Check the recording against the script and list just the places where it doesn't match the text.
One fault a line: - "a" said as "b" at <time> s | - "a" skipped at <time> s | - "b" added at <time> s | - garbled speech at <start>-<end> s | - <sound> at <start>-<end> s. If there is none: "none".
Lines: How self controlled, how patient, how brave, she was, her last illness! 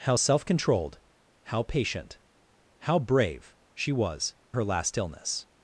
none